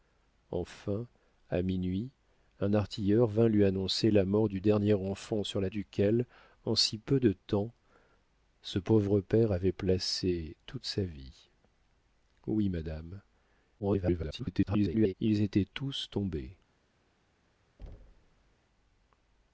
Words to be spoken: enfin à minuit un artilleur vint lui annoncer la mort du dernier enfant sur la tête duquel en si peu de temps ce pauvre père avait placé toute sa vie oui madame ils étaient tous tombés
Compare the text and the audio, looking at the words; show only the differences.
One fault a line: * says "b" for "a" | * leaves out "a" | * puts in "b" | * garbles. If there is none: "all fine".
* leaves out "tête"
* garbles